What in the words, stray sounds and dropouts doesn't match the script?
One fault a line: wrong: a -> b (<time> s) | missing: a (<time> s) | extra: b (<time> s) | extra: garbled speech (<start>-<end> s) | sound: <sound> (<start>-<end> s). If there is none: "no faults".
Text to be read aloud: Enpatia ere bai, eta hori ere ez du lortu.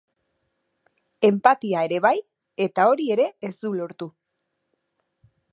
no faults